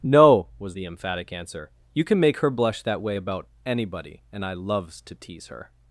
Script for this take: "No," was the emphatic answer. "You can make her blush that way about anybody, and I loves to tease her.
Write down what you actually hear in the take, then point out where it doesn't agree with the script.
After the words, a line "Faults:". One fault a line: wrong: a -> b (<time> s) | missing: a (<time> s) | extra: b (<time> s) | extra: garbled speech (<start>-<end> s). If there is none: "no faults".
"No," was the emphatic answer. "You can make her blush that way about anybody, and I loves to tease her.
Faults:
no faults